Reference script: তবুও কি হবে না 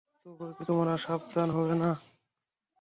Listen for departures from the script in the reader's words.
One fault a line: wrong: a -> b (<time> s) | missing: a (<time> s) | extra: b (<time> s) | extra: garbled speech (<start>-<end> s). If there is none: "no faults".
extra: তোমরা সাবধান (0.7 s)